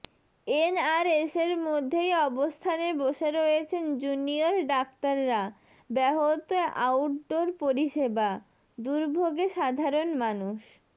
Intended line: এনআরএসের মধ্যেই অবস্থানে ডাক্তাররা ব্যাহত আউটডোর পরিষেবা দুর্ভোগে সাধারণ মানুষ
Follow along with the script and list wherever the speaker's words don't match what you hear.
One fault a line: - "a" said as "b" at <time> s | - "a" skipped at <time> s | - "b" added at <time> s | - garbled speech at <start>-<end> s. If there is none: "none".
- "বসে রয়েছেন জুনিয়র" added at 3.0 s